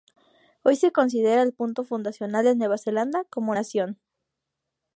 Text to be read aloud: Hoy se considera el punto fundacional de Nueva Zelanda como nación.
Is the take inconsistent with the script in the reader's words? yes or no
no